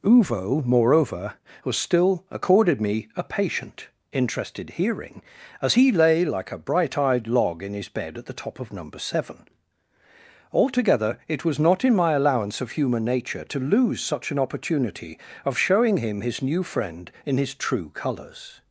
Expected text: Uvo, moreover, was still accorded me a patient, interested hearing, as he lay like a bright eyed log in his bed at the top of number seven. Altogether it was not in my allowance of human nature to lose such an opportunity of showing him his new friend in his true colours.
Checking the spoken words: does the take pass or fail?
pass